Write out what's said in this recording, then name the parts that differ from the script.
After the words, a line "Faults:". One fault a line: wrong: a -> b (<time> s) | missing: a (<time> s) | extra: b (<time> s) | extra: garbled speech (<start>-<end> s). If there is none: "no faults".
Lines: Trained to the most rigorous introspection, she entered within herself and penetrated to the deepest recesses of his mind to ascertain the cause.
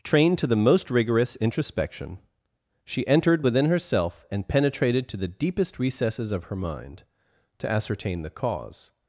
Trained to the most rigorous introspection, she entered within herself and penetrated to the deepest recesses of her mind to ascertain the cause.
Faults:
wrong: his -> her (6.5 s)